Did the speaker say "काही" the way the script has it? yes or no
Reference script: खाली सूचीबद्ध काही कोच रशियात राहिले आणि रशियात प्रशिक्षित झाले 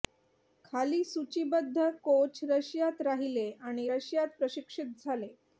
no